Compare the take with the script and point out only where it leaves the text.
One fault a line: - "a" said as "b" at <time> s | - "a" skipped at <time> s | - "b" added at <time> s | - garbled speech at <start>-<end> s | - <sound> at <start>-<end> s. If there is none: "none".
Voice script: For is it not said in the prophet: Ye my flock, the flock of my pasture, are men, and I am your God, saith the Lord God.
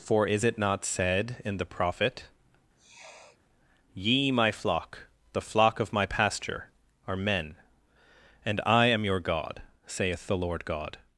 - sniff at 2.8-3.4 s